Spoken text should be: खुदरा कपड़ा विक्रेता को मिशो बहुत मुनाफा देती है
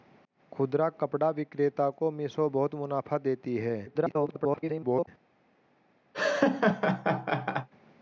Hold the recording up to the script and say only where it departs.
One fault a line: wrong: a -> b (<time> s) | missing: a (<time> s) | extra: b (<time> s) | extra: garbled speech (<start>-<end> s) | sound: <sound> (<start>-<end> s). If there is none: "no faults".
extra: garbled speech (3.9-5.1 s)
sound: laugh (6.1-7.7 s)